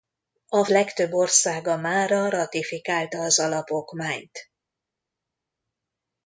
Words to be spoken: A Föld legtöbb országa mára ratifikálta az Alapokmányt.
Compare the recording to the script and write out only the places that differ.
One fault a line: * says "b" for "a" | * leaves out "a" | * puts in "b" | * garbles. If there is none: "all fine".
* leaves out "Föld"